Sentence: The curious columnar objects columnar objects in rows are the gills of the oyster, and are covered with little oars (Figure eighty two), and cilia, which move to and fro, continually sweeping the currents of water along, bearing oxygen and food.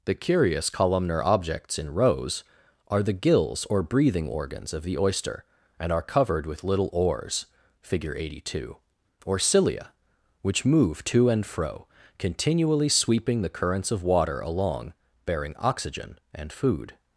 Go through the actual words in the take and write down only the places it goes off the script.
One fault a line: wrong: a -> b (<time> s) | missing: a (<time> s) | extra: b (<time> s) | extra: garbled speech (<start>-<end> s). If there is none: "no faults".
missing: columnar objects (1.8 s)
extra: or breathing organs (3.6 s)
wrong: and -> or (9.3 s)